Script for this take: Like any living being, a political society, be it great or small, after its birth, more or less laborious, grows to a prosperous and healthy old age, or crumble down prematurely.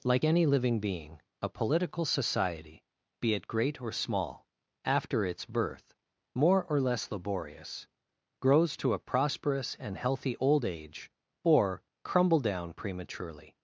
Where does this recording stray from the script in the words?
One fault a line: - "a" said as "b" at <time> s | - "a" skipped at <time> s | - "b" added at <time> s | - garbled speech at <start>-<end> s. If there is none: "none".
none